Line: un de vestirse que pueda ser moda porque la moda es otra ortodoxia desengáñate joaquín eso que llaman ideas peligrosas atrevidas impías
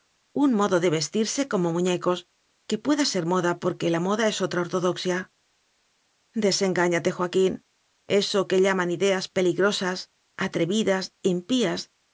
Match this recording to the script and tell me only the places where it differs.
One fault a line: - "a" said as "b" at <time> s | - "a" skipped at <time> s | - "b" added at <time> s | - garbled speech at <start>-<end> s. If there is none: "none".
- "modo" added at 0.6 s
- "como muñecos" added at 1.5 s